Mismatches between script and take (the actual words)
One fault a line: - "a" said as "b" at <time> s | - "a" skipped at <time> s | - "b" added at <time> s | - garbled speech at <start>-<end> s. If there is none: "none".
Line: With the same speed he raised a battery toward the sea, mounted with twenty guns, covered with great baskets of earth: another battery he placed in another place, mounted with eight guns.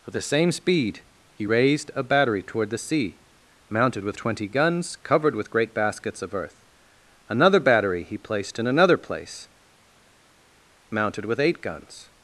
none